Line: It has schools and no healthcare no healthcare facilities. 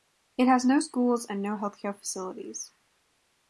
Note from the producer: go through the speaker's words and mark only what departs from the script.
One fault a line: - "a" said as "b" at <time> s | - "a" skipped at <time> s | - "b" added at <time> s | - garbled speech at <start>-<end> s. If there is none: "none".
- "no" added at 0.7 s
- "no healthcare" skipped at 1.9 s